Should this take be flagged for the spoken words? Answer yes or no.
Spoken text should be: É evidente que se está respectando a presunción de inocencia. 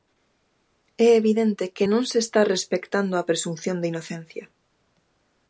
yes